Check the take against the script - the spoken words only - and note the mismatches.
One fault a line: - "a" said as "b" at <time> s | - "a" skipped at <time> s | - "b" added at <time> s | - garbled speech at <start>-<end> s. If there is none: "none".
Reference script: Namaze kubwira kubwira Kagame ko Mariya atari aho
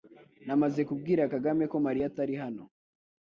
- "kubwira" skipped at 1.2 s
- "aho" said as "hano" at 2.4 s